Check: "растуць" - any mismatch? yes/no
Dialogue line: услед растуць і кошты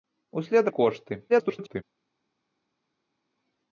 yes